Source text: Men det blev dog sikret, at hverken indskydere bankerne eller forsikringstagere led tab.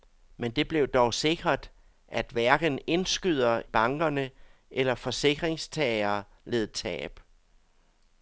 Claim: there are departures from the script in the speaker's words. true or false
false